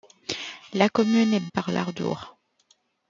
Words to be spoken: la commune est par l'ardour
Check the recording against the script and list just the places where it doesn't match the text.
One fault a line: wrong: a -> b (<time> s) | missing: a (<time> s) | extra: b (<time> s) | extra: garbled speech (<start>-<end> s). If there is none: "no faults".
no faults